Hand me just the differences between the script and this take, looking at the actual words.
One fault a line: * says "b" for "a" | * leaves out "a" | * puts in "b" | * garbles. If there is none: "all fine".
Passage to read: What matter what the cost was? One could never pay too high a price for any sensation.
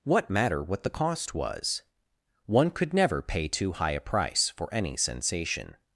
all fine